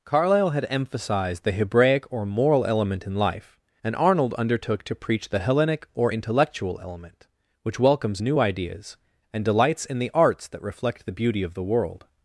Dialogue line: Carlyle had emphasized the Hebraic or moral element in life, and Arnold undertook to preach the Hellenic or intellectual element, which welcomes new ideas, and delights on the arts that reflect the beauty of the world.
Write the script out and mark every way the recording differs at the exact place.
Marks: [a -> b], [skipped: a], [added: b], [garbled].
Carlyle had emphasized the Hebraic or moral element in life, and Arnold undertook to preach the Hellenic or intellectual element, which welcomes new ideas, and delights [on -> in] the arts that reflect the beauty of the world.